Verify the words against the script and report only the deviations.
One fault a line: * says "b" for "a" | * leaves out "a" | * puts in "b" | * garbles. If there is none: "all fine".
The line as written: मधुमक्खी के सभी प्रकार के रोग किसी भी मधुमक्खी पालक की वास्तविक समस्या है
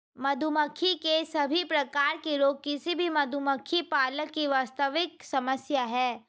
all fine